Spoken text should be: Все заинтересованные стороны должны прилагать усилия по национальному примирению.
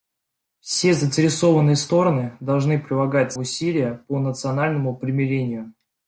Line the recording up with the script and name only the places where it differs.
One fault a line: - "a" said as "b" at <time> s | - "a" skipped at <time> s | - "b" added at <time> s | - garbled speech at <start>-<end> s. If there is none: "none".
none